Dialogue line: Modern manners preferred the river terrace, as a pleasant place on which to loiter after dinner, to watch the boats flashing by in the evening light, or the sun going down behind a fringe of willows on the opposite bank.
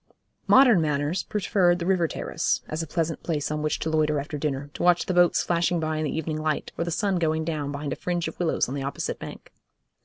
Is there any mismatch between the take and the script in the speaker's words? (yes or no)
no